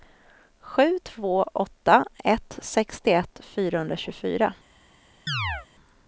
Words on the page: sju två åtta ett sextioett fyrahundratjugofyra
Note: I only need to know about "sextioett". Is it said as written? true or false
true